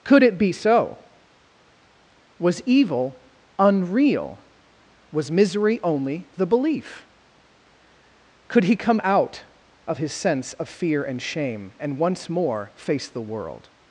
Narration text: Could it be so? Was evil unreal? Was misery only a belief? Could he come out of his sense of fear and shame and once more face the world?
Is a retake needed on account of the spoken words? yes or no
yes